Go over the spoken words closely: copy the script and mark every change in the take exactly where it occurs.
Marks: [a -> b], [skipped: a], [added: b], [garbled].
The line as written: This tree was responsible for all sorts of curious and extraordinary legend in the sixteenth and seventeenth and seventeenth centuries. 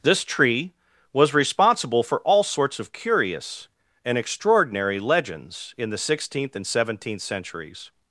This tree was responsible for all sorts of curious and extraordinary [legend -> legends] in the sixteenth and seventeenth [skipped: and seventeenth] centuries.